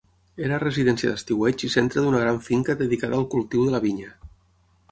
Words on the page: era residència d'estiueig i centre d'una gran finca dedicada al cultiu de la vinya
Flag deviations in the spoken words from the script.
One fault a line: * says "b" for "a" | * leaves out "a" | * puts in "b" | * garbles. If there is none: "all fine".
all fine